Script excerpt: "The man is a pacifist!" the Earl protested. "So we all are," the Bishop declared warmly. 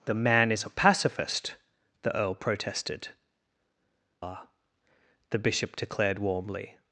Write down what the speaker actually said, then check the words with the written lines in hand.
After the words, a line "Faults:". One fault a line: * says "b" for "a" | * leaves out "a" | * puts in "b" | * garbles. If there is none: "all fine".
"The man is a pacifist!" the Earl protested. "Are," the Bishop declared warmly.
Faults:
* leaves out "So we all"